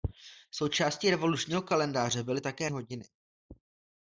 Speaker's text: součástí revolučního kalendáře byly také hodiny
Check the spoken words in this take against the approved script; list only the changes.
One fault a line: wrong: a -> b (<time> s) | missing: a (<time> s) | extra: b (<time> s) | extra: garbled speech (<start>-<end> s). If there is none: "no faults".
no faults